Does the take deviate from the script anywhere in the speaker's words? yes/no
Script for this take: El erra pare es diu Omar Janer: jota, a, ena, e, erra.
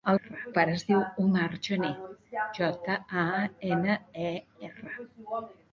no